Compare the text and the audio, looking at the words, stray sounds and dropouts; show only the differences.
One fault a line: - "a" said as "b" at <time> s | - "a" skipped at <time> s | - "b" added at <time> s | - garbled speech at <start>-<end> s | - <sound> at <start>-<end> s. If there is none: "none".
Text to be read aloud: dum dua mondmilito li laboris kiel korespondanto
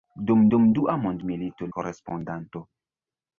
- "dum" added at 0.5 s
- "li laboris kiel" skipped at 1.7 s